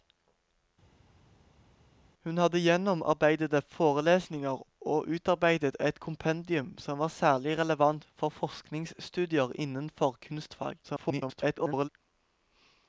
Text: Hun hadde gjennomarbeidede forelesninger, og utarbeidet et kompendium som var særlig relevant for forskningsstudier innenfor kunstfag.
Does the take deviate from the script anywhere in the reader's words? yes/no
yes